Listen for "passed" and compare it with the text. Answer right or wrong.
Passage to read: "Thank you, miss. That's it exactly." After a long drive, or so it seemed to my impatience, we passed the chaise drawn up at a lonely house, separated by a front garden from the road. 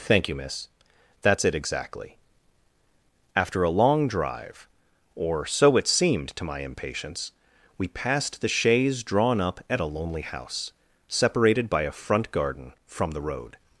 right